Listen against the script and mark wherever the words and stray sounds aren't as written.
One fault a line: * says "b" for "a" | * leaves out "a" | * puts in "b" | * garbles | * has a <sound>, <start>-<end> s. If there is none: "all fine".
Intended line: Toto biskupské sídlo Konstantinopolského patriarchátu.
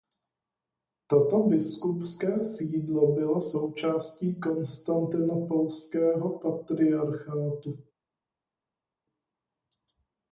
* puts in "bylo součástí"